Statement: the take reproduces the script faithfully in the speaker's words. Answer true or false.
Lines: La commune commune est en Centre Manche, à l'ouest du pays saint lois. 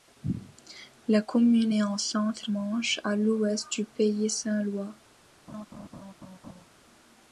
false